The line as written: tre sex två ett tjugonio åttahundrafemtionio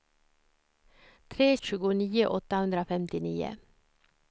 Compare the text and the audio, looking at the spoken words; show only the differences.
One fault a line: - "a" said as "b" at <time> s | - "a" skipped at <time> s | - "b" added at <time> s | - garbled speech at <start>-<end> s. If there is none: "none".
- "sex två ett" skipped at 1.6 s